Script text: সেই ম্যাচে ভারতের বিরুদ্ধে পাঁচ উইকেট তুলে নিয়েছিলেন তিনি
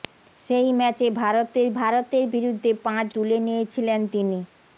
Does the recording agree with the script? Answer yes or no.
no